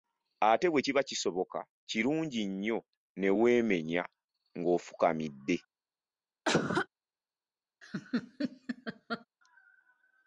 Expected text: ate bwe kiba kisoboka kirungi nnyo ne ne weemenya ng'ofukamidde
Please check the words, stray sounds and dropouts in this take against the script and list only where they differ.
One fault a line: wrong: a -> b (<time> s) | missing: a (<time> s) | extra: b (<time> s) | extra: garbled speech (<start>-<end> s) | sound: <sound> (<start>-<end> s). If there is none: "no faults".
missing: ne (3.3 s)
sound: cough (6.5-6.9 s)
sound: laugh (7.8-9.3 s)